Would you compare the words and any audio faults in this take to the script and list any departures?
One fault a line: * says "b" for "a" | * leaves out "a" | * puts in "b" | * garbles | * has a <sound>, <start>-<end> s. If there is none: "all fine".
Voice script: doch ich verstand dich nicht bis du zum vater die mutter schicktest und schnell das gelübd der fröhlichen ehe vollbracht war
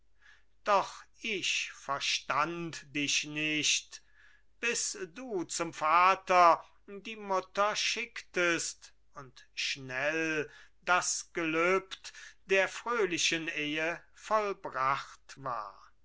all fine